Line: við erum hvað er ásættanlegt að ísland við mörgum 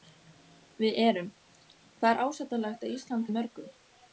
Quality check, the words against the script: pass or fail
pass